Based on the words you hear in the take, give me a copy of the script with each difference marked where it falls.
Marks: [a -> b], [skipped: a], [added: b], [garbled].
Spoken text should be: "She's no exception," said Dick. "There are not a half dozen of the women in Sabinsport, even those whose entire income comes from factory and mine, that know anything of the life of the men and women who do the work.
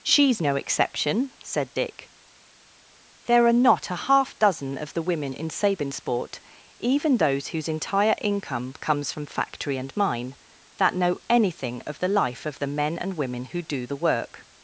"She's no exception," said Dick. "There are not a half dozen of the women in Sabinsport, even those whose entire income comes from factory and mine, that know anything of the life of the men and women who do the work.